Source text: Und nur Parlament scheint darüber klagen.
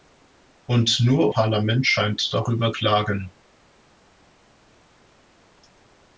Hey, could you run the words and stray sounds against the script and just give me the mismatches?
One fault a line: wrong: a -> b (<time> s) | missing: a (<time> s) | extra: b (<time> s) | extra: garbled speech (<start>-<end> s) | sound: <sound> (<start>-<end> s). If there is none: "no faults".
no faults